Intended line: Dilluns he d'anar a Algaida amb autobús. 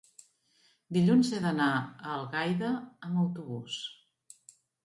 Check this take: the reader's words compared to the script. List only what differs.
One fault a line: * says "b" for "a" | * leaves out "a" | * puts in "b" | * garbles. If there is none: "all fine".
all fine